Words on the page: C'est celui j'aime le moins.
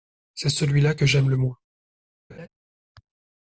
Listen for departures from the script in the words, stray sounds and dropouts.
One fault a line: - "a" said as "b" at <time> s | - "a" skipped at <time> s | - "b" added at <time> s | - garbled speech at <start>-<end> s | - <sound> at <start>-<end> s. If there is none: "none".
- "là que" added at 0.8 s
- laugh at 2.3-2.5 s